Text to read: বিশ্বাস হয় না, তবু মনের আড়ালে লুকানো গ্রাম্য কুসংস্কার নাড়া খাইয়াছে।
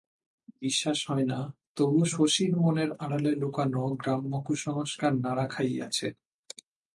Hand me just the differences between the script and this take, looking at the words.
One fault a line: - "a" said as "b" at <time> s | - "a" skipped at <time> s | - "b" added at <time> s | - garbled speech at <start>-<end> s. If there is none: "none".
- "শশীর" added at 2.0 s